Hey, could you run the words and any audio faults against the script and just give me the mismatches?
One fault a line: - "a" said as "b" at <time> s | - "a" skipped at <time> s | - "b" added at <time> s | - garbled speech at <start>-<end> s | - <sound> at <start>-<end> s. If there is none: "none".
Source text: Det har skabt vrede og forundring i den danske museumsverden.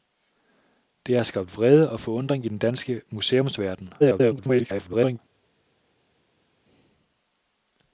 - garbled speech at 4.0-5.2 s